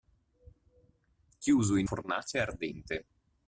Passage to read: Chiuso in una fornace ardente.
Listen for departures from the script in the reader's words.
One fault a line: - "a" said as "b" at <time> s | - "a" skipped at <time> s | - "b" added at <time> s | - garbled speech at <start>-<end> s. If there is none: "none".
- "una" skipped at 1.9 s